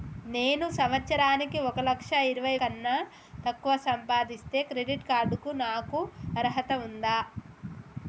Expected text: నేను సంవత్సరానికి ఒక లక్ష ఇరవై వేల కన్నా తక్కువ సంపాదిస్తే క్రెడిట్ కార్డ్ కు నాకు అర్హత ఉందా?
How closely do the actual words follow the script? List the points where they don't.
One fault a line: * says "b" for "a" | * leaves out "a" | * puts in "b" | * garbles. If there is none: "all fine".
* leaves out "వేల"